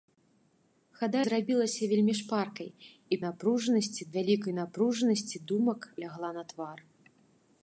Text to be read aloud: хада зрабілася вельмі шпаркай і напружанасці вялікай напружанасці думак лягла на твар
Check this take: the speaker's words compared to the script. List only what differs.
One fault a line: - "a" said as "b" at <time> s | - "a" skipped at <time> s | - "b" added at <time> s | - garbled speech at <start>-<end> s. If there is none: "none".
none